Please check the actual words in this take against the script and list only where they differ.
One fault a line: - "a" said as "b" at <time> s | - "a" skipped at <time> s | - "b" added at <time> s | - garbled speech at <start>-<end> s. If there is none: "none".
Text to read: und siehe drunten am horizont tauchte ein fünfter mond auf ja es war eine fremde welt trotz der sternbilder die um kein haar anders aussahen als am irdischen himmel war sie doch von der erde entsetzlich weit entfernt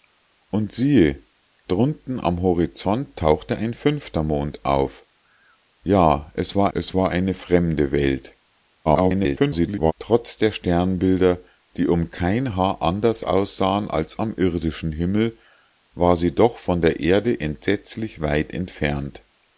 - "es war" added at 6.7 s
- garbled speech at 8.8-9.9 s